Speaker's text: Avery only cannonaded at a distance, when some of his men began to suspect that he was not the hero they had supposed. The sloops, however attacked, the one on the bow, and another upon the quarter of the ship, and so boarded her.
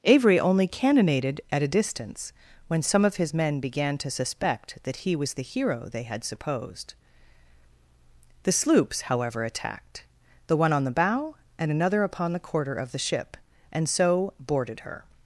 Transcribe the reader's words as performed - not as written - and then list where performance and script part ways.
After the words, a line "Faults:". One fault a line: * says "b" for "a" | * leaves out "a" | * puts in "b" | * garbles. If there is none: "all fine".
Avery only cannonaded at a distance, when some of his men began to suspect that he was the hero they had supposed. The sloops, however attacked, the one on the bow, and another upon the quarter of the ship, and so boarded her.
Faults:
* leaves out "not"